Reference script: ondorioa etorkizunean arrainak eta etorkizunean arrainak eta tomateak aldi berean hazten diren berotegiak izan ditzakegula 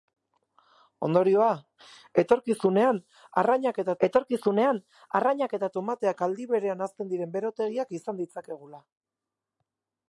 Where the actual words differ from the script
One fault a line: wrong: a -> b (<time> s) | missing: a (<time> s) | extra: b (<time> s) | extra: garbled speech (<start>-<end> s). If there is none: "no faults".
no faults